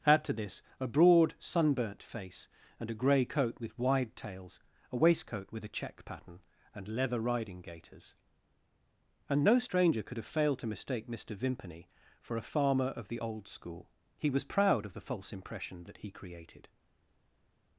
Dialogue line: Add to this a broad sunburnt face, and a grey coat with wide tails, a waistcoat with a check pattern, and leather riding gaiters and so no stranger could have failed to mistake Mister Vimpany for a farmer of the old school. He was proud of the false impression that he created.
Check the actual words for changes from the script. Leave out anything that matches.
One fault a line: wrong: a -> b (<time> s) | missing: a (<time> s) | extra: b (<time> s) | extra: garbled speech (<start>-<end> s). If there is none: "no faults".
missing: so (9.4 s)